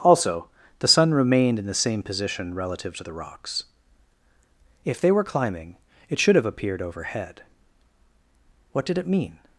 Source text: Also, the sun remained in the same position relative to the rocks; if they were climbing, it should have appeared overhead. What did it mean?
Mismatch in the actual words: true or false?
false